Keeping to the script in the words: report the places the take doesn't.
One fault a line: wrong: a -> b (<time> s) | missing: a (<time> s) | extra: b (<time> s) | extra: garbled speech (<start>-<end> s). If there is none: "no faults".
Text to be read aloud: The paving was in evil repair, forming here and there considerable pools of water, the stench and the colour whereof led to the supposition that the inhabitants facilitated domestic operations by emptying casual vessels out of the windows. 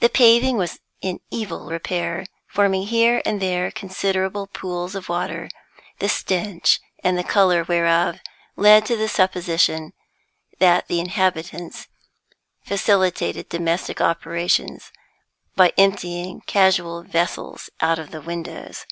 no faults